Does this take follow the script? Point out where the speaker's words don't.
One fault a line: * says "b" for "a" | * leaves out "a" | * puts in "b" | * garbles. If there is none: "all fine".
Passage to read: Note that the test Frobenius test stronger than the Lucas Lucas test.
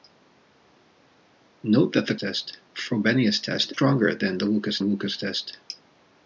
all fine